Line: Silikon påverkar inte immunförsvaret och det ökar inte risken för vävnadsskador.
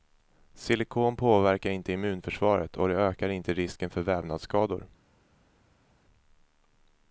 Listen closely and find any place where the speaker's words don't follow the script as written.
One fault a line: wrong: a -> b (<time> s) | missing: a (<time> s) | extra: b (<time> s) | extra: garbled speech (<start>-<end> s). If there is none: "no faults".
no faults